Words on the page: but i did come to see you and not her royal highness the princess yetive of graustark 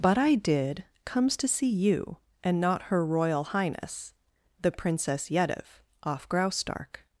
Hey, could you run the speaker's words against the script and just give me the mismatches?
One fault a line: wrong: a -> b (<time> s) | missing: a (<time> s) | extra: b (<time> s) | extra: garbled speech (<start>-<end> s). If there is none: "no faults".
wrong: come -> comes (1.1 s)
wrong: of -> off (6.0 s)